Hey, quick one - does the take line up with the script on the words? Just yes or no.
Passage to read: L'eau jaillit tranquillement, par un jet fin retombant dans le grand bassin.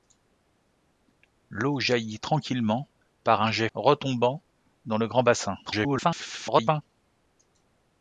no